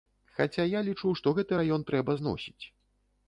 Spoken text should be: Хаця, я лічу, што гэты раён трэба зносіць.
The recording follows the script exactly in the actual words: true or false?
true